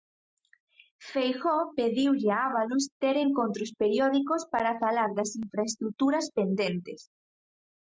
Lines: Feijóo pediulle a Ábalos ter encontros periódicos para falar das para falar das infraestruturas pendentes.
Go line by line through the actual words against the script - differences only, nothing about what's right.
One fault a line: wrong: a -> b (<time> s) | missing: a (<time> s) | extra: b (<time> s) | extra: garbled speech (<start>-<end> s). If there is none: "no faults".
missing: para falar das (5.3 s)